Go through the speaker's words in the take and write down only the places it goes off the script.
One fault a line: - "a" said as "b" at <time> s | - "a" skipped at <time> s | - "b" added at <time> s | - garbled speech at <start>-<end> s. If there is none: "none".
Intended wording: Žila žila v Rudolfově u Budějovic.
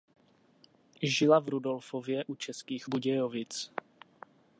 - "žila" skipped at 1.4 s
- "Českých" added at 2.3 s